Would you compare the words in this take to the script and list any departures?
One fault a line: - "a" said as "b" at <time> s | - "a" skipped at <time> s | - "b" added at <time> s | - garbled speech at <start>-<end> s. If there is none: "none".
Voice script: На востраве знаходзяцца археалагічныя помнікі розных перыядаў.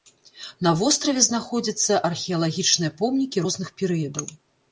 none